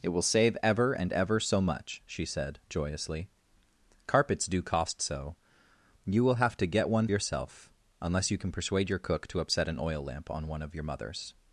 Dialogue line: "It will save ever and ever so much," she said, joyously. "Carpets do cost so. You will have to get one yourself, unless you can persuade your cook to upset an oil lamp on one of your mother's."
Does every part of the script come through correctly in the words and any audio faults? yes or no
yes